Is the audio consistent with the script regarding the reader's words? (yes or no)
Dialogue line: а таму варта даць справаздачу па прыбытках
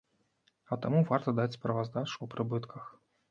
yes